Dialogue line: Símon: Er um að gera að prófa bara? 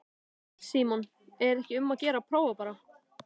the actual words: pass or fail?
fail